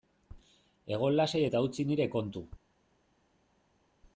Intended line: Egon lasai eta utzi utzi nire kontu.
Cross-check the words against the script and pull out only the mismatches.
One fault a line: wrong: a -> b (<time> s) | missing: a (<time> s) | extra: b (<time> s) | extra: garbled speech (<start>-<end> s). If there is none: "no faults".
missing: utzi (1.9 s)